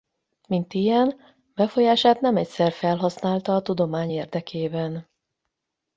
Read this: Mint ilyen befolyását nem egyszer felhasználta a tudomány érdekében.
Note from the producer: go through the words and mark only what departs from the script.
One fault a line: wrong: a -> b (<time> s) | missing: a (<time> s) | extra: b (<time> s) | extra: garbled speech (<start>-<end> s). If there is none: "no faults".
no faults